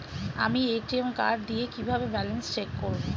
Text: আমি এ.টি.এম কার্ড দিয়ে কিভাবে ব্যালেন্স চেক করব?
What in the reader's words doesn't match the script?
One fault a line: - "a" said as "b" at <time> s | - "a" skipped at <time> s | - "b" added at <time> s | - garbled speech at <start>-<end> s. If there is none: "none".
none